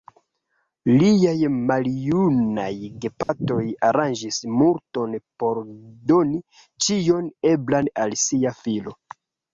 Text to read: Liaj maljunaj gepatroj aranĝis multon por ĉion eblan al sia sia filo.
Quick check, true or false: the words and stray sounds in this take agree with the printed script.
false